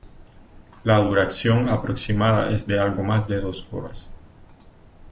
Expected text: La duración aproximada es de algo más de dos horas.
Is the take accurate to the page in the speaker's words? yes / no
yes